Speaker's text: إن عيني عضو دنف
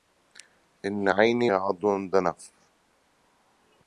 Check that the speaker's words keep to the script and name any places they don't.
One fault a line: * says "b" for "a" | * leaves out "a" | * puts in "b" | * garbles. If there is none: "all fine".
all fine